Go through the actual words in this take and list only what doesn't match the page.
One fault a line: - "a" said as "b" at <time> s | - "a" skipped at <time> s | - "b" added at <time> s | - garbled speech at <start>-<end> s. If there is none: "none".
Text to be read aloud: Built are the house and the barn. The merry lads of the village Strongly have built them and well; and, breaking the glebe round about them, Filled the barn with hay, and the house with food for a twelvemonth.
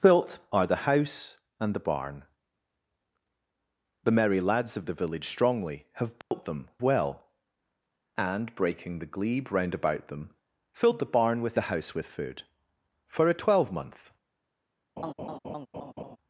- "and" skipped at 6.7 s
- "hay and" skipped at 11.6 s